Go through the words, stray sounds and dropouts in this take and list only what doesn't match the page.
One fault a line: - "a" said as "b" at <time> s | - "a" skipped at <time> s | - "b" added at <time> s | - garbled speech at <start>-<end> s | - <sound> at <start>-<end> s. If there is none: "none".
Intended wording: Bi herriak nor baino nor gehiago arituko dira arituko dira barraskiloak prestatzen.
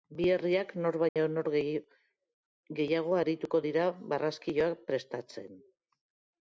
- dropout at 1.1-1.2 s
- "arituko dira" skipped at 3.9 s